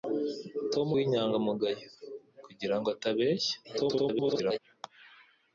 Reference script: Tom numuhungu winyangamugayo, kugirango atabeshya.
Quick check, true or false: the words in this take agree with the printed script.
false